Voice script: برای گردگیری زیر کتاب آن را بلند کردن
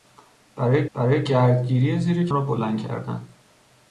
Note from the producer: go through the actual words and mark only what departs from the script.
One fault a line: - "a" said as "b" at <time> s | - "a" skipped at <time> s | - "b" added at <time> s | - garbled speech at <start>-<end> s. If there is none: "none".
- "برای" added at 0.9 s
- "کتاب آن" skipped at 2.3 s